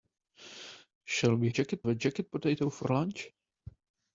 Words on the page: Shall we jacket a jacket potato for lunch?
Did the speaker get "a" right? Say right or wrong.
right